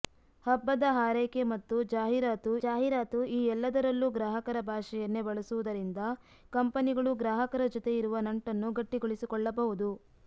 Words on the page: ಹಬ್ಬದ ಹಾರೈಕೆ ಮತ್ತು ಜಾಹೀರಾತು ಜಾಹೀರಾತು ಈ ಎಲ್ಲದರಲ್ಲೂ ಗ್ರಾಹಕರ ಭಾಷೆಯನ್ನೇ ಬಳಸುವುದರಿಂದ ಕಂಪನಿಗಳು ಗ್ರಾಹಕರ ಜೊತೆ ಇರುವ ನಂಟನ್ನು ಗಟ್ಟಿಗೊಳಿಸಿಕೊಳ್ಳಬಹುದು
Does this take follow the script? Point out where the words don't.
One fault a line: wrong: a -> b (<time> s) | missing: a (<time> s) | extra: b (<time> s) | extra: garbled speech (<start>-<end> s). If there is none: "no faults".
no faults